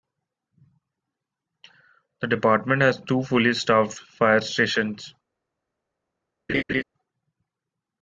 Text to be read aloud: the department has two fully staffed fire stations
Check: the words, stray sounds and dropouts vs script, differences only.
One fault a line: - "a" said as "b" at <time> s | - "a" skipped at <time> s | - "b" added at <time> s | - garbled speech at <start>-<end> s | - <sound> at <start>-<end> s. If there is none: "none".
- laugh at 6.5-6.8 s